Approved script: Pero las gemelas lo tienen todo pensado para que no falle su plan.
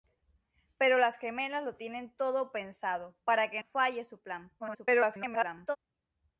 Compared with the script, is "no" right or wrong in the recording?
wrong